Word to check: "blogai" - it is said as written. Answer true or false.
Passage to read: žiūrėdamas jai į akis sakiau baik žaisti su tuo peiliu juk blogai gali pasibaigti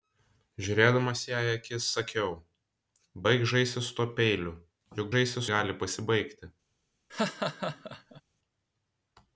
false